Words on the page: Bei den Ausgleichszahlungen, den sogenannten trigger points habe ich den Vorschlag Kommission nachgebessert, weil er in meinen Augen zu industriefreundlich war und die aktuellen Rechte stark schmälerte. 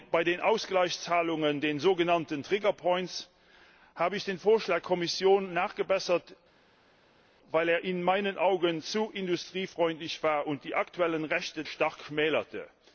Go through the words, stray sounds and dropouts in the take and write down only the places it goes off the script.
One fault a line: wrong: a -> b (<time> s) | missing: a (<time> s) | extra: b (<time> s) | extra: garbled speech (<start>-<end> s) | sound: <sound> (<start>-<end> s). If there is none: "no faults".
no faults